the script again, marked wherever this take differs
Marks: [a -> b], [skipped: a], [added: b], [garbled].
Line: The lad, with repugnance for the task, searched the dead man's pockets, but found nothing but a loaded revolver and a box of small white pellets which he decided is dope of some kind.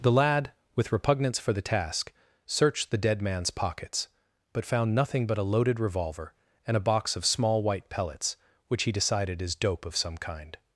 The lad, with repugnance for the task, searched the dead man's pockets, but found nothing but a loaded revolver and a box of small white pellets which he decided is dope of some kind.